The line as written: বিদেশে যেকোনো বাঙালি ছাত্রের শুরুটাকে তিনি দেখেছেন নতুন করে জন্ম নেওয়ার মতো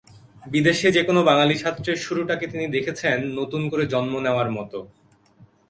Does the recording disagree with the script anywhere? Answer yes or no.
no